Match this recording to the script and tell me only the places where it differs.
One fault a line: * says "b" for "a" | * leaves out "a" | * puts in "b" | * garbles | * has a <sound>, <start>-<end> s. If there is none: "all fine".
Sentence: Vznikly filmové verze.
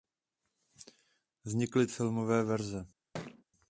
* has a thud, 3.1-3.4 s